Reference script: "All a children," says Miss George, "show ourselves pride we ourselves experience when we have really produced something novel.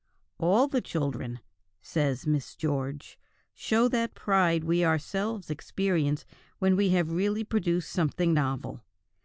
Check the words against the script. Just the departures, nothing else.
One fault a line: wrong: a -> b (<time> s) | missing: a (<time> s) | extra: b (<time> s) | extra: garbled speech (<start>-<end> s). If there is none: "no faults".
wrong: a -> the (0.7 s)
wrong: ourselves -> that (3.9 s)